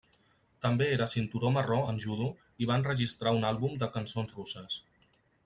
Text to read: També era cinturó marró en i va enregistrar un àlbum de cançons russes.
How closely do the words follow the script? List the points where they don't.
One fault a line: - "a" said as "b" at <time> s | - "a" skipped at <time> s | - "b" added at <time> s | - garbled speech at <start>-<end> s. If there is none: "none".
- "judo" added at 2.0 s